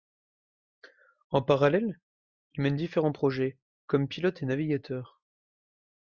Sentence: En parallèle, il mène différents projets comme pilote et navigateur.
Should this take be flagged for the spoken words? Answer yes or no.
no